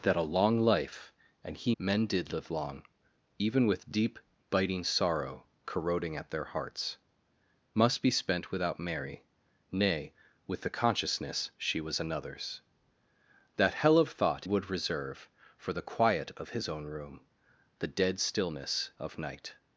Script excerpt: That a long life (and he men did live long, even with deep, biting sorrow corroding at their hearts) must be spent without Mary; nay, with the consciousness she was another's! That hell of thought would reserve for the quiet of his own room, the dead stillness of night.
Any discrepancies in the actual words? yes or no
no